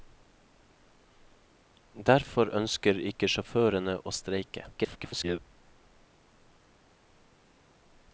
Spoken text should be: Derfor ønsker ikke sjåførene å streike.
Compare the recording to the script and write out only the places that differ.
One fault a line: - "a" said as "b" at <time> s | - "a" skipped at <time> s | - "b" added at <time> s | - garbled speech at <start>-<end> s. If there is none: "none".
- garbled speech at 4.7-5.4 s